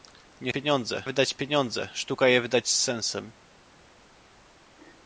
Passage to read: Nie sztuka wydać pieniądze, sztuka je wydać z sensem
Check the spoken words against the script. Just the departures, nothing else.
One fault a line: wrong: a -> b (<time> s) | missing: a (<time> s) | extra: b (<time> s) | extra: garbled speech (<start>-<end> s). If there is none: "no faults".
wrong: sztuka -> pieniądze (0.5 s)